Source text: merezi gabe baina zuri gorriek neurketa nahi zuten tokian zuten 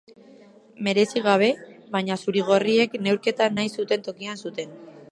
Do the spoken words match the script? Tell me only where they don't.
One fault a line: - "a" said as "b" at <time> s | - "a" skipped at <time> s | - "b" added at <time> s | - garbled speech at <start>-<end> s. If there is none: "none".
none